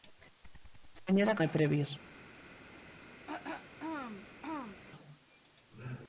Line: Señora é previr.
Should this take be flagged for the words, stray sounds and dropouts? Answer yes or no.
yes